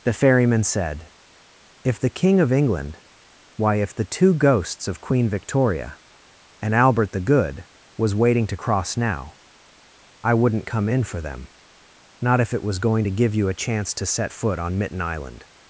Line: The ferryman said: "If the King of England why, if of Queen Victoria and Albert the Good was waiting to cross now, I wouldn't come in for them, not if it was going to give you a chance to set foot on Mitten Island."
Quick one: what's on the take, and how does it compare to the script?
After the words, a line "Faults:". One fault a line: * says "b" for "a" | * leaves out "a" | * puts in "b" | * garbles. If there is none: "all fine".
The ferryman said: "If the King of England why, if the two ghosts of Queen Victoria and Albert the Good was waiting to cross now, I wouldn't come in for them, not if it was going to give you a chance to set foot on Mitten Island."
Faults:
* puts in "the two ghosts"